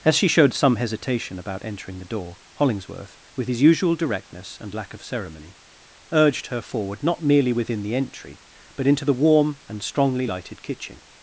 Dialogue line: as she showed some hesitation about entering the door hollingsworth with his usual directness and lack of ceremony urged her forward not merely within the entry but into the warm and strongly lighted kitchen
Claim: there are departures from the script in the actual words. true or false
false